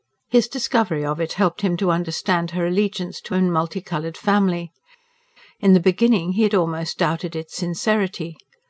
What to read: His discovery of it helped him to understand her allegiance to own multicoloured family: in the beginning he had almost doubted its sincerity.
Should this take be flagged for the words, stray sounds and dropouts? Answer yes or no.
no